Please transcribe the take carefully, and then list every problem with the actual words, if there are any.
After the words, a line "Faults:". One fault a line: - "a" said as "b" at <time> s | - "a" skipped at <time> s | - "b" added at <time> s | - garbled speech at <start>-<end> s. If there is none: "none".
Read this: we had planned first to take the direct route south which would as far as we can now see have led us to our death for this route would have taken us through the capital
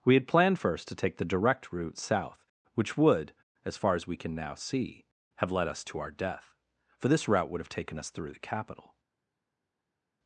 we had planned first to take the direct route south which would as far as we can now see have led us to our death for this route would have taken us through the capital
Faults:
none